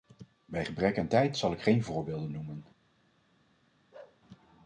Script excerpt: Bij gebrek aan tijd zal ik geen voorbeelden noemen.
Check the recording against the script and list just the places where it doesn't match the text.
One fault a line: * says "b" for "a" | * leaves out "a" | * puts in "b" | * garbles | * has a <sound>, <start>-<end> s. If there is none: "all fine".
* has a bark, 3.9-4.2 s